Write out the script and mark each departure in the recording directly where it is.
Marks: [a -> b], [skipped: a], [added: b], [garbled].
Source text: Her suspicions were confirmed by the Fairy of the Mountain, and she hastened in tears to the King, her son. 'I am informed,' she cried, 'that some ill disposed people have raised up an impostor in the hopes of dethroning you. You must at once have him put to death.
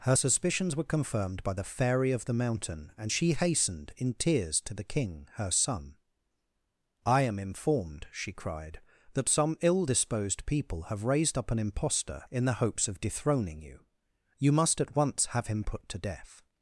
Her suspicions were confirmed by the Fairy of the Mountain, and she hastened in tears to the King, her son. 'I am informed,' she cried, 'that some ill disposed people have raised up an impostor in the hopes of dethroning you. You must at once have him put to death.